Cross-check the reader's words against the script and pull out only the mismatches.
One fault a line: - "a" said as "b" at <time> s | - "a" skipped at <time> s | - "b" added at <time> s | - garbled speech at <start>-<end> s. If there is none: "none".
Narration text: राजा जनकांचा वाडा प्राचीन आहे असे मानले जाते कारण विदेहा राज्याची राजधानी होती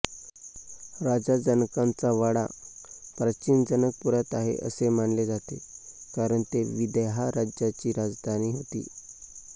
- "जनकपुरात" added at 3.6 s
- "ते" added at 6.5 s